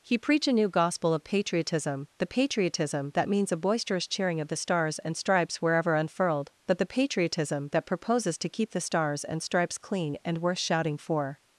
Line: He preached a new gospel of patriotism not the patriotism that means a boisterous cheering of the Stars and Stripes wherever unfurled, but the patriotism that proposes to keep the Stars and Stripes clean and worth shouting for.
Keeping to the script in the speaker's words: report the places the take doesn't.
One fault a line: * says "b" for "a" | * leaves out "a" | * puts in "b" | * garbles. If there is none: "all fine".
* says "preach" for "preached"
* leaves out "not"